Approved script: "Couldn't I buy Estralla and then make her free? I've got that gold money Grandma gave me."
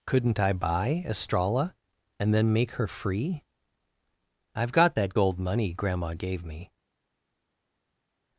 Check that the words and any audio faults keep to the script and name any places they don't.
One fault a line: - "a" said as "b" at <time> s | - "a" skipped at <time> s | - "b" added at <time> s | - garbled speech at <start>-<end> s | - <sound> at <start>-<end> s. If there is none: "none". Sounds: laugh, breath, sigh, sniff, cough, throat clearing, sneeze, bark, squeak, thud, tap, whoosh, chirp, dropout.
none